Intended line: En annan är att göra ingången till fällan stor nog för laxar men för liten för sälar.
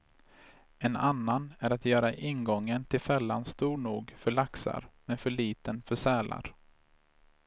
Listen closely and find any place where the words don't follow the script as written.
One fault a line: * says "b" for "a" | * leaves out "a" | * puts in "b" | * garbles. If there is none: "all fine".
all fine